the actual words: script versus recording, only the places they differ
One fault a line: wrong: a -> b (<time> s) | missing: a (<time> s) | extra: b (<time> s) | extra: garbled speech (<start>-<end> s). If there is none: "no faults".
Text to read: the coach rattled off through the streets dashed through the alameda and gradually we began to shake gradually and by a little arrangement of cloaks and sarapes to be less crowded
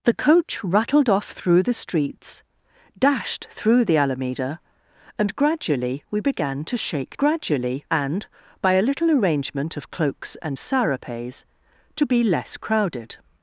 no faults